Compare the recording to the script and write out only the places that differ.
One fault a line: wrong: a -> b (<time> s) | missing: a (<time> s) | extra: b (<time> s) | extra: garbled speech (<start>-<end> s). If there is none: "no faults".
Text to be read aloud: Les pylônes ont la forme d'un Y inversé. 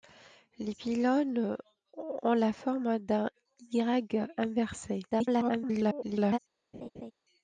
extra: garbled speech (5.1-6.4 s)